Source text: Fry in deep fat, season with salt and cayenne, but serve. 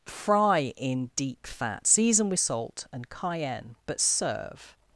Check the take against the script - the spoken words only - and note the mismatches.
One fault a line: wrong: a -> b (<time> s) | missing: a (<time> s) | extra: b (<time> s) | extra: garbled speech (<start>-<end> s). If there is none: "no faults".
no faults